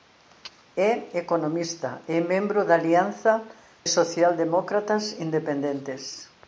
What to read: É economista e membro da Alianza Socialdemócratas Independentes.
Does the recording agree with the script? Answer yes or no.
yes